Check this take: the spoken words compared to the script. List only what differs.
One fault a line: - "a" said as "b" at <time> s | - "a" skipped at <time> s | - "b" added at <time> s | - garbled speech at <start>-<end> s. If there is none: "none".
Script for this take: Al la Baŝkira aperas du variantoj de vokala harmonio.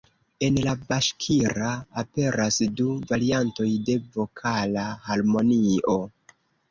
- "Al" said as "En" at 0.5 s